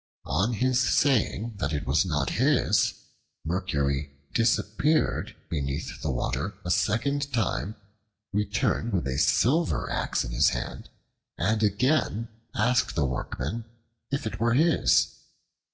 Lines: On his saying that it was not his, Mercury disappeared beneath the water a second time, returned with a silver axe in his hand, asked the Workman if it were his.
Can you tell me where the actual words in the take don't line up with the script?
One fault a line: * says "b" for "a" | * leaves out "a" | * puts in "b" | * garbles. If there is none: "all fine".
* puts in "and again"